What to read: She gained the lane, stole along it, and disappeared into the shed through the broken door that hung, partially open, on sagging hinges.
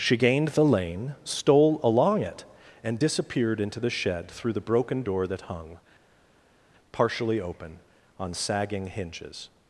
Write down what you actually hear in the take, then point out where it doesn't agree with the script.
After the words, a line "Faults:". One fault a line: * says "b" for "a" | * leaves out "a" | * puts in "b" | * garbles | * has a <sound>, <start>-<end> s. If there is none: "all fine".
She gained the lane, stole along it, and disappeared into the shed through the broken door that hung, partially open, on sagging hinges.
Faults:
all fine